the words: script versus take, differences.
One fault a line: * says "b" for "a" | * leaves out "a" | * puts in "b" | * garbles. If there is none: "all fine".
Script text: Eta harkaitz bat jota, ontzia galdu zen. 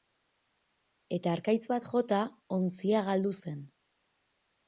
all fine